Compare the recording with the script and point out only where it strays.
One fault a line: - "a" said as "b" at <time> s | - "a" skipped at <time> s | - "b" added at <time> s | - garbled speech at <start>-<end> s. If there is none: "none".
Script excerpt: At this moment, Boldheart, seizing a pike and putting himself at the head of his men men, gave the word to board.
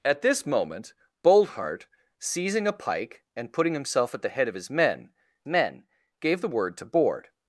none